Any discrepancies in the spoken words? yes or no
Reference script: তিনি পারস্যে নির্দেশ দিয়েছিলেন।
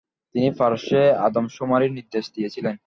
yes